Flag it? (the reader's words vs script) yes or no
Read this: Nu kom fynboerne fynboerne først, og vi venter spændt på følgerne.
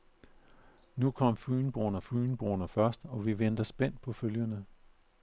no